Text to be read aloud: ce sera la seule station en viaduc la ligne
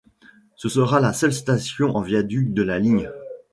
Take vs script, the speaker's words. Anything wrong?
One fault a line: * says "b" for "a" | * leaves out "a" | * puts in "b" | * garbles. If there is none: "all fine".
* puts in "de"